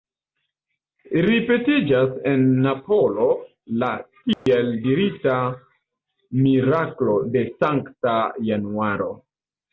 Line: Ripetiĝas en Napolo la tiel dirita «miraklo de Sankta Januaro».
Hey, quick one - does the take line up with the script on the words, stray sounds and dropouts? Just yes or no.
no